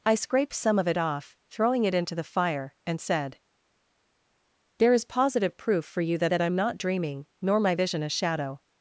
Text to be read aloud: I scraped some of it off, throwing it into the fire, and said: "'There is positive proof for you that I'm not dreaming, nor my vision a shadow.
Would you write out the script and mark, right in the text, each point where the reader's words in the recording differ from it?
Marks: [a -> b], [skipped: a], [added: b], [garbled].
I scraped some of it off, throwing it into the fire, and said: "'There is positive proof for you that [added: that] I'm not dreaming, nor my vision a shadow.